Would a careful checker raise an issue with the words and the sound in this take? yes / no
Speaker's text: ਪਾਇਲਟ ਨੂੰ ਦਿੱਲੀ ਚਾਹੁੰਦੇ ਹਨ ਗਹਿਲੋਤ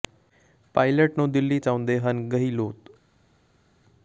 no